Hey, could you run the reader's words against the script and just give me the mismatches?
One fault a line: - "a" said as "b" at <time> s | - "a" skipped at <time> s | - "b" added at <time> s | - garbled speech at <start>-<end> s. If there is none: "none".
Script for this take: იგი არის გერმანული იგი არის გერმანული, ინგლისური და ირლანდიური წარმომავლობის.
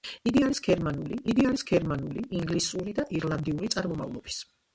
none